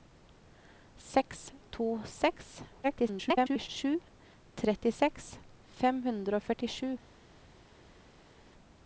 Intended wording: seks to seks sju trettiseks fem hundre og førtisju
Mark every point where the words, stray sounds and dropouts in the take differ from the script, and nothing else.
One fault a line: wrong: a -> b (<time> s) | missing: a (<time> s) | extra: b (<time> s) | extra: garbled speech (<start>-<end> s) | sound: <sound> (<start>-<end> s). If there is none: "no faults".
extra: garbled speech (2.8-3.7 s)